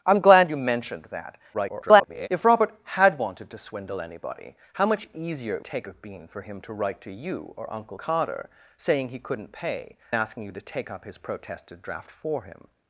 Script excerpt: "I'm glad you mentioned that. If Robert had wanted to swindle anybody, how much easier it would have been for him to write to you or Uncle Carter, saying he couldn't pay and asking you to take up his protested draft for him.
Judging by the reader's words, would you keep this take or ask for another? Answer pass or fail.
fail